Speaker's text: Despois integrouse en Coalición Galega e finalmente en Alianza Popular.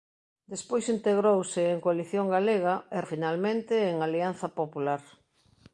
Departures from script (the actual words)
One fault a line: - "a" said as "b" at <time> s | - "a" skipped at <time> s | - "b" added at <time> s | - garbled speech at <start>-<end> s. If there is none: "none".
none